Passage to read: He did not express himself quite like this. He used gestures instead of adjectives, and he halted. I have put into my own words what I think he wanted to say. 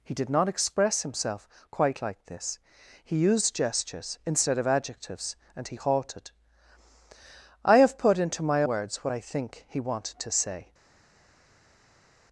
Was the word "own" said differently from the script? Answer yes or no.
yes